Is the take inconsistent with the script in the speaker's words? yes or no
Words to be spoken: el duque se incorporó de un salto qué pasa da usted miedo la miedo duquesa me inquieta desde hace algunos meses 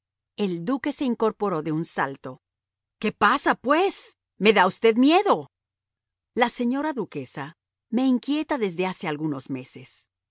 yes